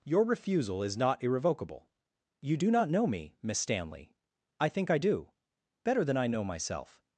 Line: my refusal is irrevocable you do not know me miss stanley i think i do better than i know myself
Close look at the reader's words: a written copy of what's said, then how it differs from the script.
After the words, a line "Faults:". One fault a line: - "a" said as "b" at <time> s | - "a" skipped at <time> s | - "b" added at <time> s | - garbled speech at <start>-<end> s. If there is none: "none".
your refusal is not irrevocable you do not know me miss stanley i think i do better than i know myself
Faults:
- "my" said as "your" at 0.0 s
- "not" added at 1.0 s